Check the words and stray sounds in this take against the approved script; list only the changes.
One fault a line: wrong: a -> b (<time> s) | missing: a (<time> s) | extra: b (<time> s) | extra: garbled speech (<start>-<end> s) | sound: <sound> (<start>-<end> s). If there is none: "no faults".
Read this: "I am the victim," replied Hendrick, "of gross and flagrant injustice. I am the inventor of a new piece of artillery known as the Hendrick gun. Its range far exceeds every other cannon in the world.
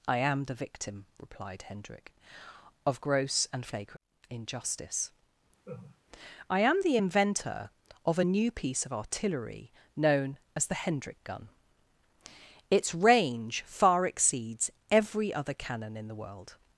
sound: laugh (5.6-6.0 s)